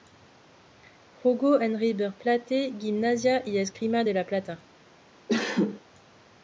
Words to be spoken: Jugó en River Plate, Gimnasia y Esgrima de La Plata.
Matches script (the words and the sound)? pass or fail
fail